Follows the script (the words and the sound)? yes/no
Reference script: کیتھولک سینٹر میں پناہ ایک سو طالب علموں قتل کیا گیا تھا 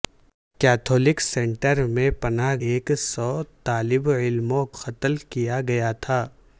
yes